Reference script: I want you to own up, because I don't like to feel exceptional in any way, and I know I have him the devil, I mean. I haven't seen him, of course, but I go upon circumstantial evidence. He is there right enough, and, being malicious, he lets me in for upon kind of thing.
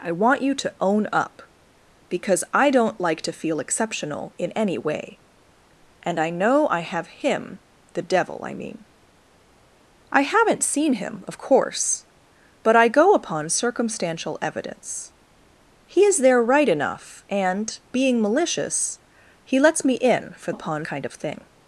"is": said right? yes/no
yes